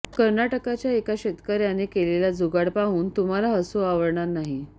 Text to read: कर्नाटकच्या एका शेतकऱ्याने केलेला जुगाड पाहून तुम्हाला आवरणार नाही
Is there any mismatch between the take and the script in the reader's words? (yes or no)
yes